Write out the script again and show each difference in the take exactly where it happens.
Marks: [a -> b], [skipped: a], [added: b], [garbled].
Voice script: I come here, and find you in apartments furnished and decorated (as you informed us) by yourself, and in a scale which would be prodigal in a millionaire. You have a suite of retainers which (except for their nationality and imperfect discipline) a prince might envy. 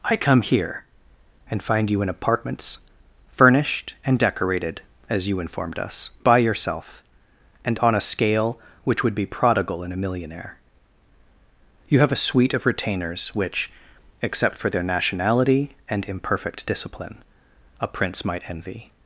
I come here, and find you in apartments furnished and decorated (as you informed us) by yourself, and [in -> on] a scale which would be prodigal in a millionaire. You have a suite of retainers which (except for their nationality and imperfect discipline) a prince might envy.